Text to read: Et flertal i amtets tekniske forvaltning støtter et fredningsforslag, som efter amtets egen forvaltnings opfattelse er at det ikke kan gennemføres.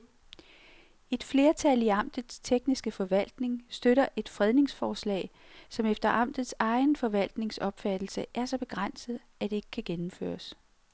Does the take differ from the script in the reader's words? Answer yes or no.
yes